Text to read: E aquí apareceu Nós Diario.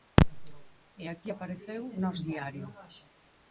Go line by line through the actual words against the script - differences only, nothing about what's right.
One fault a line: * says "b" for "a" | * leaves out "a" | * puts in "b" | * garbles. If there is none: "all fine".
all fine